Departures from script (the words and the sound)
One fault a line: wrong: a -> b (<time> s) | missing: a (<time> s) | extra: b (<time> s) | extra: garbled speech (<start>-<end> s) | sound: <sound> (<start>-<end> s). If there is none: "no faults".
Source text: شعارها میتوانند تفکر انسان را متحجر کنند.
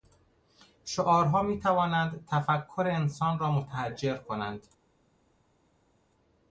no faults